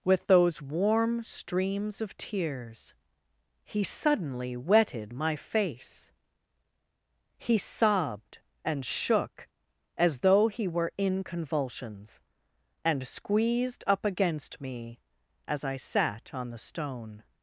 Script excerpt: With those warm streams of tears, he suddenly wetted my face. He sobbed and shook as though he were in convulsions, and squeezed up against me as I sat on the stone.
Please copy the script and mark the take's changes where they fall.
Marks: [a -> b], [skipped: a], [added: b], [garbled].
With those warm streams of tears, he suddenly wetted my face. He sobbed and shook as though he were in convulsions, and squeezed up against me as I sat on the stone.